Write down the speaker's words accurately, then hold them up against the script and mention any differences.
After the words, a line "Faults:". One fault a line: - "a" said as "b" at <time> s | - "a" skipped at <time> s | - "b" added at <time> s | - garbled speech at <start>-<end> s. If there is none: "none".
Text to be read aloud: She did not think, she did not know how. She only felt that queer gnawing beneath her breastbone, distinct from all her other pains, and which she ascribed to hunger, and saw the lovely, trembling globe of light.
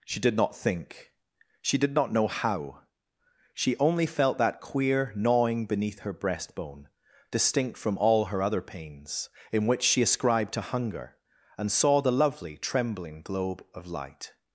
She did not think, she did not know how. She only felt that queer gnawing beneath her breastbone, distinct from all her other pains, in which she ascribed to hunger, and saw the lovely, trembling globe of light.
Faults:
- "and" said as "in" at 9.5 s